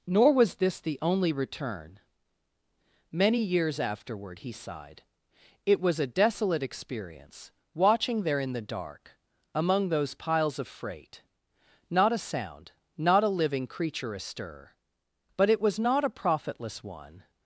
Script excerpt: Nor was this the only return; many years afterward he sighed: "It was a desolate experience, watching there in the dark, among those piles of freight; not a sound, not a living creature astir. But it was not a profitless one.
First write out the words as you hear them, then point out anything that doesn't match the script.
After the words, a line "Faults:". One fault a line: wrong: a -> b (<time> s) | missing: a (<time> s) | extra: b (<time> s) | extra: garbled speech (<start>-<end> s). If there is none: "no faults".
Nor was this the only return; many years afterward he sighed: "It was a desolate experience, watching there in the dark, among those piles of freight; not a sound, not a living creature astir. But it was not a profitless one.
Faults:
no faults